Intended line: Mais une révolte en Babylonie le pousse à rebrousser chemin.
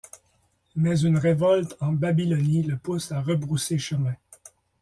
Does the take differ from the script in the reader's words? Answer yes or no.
no